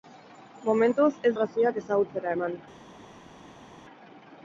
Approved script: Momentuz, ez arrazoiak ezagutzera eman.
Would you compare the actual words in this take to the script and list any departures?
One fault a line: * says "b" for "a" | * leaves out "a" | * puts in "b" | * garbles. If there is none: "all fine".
all fine